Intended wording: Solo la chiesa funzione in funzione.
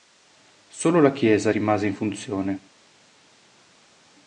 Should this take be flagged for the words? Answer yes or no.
yes